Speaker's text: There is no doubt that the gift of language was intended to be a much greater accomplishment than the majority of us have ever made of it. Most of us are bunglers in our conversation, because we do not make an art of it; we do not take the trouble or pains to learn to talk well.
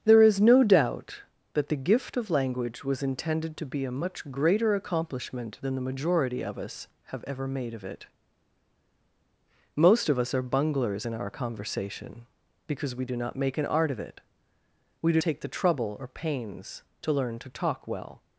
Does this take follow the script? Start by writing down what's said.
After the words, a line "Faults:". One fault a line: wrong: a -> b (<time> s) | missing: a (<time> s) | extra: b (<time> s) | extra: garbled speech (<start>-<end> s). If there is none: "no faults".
There is no doubt that the gift of language was intended to be a much greater accomplishment than the majority of us have ever made of it. Most of us are bunglers in our conversation, because we do not make an art of it; we do take the trouble or pains to learn to talk well.
Faults:
missing: not (15.2 s)